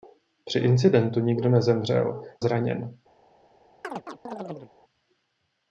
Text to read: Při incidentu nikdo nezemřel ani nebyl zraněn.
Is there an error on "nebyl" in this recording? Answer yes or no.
yes